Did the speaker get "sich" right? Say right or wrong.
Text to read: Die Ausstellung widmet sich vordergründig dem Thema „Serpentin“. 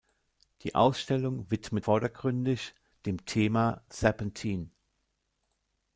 wrong